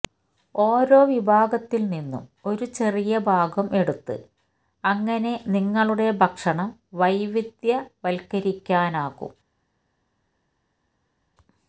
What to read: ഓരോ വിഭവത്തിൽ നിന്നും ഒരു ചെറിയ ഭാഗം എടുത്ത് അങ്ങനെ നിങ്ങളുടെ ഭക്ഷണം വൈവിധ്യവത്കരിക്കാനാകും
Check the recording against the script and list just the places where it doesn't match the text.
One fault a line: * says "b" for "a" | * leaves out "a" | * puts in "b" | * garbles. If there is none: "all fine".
all fine